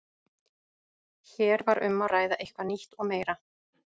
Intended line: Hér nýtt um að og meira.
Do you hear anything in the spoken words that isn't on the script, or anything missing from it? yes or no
yes